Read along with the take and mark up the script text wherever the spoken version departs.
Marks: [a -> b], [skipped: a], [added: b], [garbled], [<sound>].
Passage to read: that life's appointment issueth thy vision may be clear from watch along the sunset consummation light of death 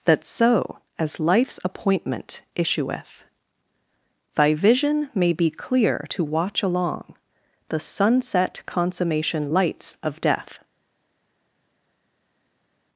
that [added: so as] life's appointment issueth thy vision may be clear [from -> to] watch along the sunset consummation [light -> lights] of death